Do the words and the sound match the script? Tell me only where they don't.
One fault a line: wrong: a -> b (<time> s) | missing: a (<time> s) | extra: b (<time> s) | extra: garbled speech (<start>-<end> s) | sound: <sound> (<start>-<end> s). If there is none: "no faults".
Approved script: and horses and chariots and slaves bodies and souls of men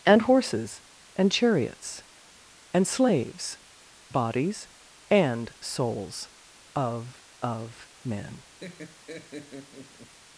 extra: of (7.4 s)
sound: laugh (8.6-10.1 s)